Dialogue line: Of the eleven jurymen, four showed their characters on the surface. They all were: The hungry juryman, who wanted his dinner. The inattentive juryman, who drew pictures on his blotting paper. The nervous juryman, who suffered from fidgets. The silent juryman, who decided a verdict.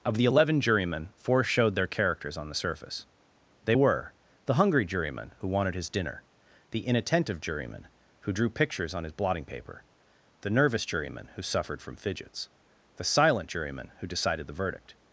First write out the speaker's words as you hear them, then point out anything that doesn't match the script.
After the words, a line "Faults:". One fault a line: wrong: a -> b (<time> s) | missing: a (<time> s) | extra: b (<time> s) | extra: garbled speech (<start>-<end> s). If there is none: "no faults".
Of the eleven jurymen, four showed their characters on the surface. They were: The hungry juryman, who wanted his dinner. The inattentive juryman, who drew pictures on his blotting paper. The nervous juryman, who suffered from fidgets. The silent juryman, who decided the verdict.
Faults:
missing: all (3.8 s)
wrong: a -> the (14.5 s)